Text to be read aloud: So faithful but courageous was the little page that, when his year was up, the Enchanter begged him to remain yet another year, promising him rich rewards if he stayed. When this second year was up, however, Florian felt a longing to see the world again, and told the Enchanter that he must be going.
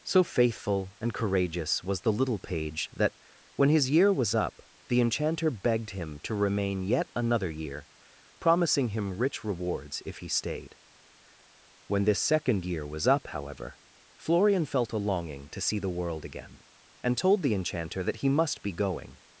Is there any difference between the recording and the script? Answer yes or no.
yes